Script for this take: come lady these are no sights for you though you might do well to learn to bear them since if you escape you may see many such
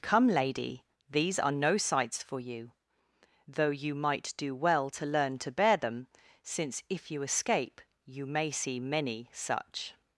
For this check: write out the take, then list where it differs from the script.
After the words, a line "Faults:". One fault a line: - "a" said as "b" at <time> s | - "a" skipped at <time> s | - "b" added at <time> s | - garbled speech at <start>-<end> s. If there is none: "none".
come lady these are no sights for you though you might do well to learn to bear them since if you escape you may see many such
Faults:
none